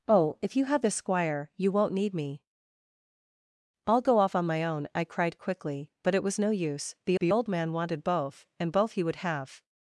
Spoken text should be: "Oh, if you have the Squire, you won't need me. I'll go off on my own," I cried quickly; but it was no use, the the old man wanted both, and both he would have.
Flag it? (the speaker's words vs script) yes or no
no